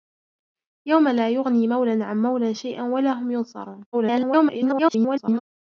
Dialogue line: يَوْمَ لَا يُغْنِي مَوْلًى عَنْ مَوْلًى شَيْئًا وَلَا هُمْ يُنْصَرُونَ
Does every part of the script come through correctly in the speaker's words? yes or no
no